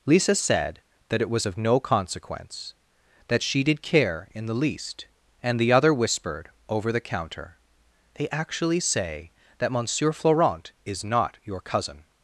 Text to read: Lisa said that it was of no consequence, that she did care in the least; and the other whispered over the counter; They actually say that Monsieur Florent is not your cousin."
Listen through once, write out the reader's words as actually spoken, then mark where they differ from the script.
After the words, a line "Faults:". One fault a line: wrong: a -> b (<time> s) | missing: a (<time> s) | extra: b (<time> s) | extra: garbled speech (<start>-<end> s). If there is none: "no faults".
Lisa said that it was of no consequence, that she did care in the least; and the other whispered over the counter; They actually say that Monsieur Florent is not your cousin."
Faults:
no faults